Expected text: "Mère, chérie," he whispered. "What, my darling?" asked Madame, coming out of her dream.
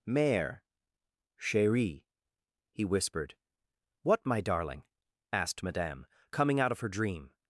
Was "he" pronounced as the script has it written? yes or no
yes